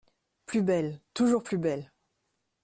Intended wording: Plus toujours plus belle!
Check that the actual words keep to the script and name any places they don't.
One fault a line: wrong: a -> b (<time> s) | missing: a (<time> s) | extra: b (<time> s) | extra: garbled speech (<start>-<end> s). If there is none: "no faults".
extra: belle (0.6 s)